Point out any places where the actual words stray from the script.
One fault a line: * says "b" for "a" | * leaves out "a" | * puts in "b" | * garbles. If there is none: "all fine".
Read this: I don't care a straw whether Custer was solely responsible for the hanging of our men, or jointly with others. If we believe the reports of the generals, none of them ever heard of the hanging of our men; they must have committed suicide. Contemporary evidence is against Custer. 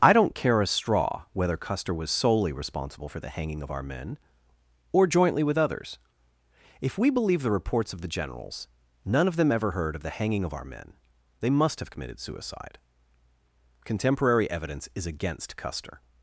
all fine